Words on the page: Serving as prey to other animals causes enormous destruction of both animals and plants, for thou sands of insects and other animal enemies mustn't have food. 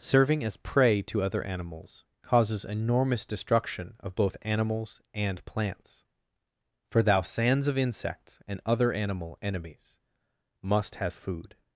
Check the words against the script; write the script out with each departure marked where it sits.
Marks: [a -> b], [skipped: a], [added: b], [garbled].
Serving as prey to other animals causes enormous destruction of both animals and plants, for thou sands of insects and other animal enemies [mustn't -> must] have food.